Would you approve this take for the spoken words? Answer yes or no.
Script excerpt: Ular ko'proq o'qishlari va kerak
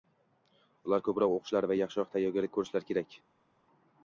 no